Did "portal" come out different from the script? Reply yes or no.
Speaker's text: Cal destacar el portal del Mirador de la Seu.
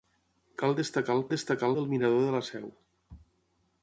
yes